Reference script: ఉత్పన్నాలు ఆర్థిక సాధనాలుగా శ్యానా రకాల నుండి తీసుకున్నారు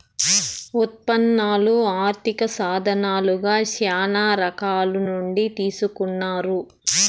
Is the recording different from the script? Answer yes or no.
no